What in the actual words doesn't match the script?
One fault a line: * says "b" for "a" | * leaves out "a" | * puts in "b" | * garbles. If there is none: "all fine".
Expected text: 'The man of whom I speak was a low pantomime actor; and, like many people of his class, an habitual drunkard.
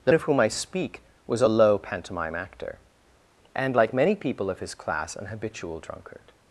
* leaves out "man"